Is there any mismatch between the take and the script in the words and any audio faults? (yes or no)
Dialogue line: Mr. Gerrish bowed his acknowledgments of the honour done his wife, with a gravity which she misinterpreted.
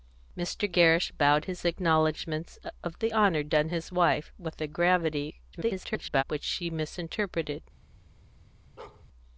yes